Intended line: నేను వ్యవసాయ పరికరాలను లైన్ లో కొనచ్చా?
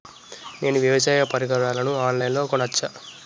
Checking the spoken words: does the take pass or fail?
fail